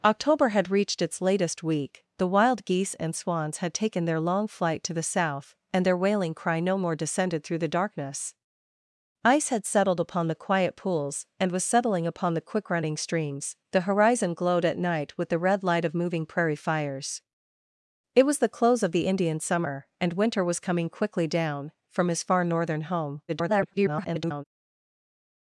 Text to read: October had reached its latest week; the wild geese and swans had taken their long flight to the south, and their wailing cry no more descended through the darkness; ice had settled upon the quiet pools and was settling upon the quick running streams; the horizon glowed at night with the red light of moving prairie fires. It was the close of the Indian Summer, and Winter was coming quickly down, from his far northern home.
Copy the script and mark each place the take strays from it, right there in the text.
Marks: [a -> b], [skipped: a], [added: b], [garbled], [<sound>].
October had reached its latest week; the wild geese and swans had taken their long flight to the south, and their wailing cry no more descended through the darkness; ice had settled upon the quiet pools and was settling upon the quick running streams; the horizon glowed at night with the red light of moving prairie fires. It was the close of the Indian Summer, and Winter was coming quickly down, from his far northern home. [garbled]